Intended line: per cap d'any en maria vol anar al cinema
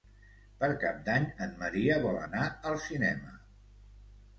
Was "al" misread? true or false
false